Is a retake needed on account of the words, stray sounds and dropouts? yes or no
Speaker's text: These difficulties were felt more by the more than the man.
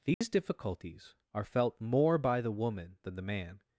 yes